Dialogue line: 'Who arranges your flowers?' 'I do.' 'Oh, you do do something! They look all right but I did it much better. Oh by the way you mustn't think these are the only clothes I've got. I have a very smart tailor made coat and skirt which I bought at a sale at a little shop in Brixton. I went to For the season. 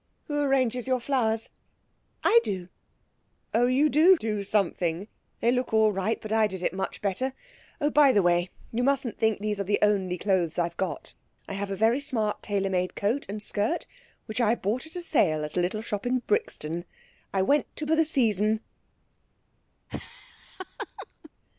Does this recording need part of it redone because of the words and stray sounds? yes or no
yes